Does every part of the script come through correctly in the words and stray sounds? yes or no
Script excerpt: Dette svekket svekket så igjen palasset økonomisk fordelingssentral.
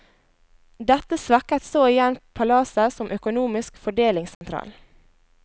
no